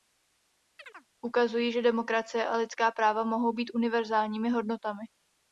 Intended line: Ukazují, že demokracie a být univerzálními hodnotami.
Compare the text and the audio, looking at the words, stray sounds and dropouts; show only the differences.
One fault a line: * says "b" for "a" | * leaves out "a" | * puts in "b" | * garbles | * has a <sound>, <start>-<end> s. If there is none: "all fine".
* has a chirp, 0.8-1.1 s
* puts in "lidská práva mohou"